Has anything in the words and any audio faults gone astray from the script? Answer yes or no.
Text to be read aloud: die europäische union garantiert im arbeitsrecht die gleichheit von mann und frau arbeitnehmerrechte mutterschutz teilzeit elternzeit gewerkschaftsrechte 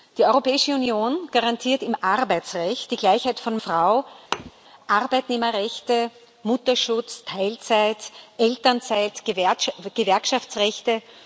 yes